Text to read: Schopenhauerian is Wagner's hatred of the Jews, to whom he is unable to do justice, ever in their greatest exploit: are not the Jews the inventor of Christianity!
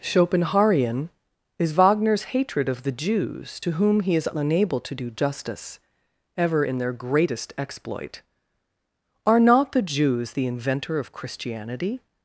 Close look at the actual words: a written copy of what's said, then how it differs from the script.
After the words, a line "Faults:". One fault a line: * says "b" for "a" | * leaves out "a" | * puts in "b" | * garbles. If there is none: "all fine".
Schopenhauerian is Wagner's hatred of the Jews, to whom he is unable to do justice, ever in their greatest exploit: are not the Jews the inventor of Christianity!
Faults:
all fine